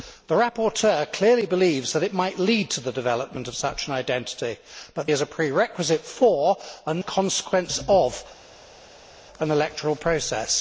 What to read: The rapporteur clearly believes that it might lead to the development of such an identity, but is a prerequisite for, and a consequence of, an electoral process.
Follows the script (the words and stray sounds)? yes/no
yes